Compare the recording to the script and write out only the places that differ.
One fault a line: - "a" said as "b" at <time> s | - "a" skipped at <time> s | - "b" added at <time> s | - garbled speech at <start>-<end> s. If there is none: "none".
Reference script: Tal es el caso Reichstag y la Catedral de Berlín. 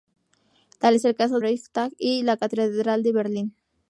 none